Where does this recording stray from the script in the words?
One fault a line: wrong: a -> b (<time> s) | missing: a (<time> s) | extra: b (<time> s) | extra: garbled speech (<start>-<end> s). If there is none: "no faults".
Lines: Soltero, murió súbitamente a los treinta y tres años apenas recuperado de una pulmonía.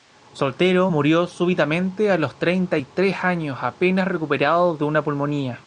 no faults